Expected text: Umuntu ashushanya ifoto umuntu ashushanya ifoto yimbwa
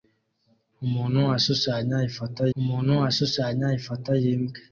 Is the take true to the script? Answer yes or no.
yes